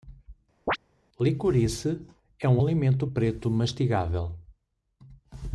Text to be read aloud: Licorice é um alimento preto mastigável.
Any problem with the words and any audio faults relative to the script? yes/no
yes